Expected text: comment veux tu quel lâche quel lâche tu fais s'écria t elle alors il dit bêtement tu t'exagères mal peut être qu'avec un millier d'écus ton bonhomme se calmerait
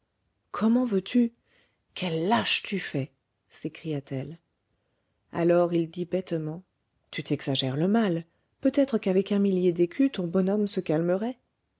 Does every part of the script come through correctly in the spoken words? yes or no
no